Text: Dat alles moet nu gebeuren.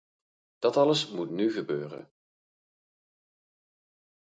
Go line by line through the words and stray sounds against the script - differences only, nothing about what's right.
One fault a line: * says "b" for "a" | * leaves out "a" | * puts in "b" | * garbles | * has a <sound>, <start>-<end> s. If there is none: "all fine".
all fine